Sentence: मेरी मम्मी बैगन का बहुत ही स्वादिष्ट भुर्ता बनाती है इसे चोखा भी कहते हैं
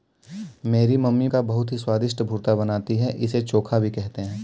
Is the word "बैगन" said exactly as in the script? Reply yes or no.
no